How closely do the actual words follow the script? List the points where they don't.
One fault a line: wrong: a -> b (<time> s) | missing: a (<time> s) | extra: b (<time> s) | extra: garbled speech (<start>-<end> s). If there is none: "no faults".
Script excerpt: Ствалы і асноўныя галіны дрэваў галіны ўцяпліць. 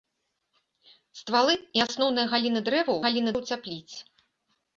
no faults